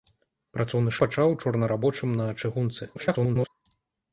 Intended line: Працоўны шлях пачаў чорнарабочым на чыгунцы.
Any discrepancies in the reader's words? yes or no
yes